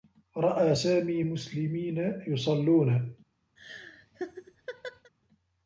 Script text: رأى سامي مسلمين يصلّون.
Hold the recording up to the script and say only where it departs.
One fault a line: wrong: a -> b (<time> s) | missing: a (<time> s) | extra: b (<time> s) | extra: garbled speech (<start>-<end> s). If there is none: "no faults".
no faults